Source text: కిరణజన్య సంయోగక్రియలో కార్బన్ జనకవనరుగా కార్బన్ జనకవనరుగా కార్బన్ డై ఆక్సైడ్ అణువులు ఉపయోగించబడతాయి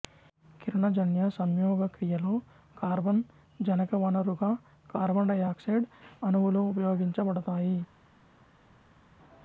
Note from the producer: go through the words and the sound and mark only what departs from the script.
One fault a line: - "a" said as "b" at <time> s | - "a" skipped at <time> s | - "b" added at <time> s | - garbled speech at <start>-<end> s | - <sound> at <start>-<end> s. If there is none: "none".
- "జనకవనరుగా కార్బన్" skipped at 5.3 s